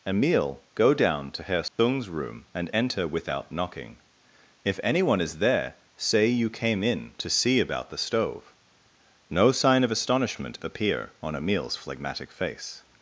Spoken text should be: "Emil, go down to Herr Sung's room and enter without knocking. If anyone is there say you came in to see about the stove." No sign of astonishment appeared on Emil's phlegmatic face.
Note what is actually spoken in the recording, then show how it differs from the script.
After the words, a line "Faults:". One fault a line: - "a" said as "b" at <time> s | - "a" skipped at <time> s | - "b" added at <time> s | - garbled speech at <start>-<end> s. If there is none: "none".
"Emil, go down to Herr Sung's room and enter without knocking. If anyone is there say you came in to see about the stove." No sign of astonishment appear on Emil's phlegmatic face.
Faults:
- "appeared" said as "appear" at 10.6 s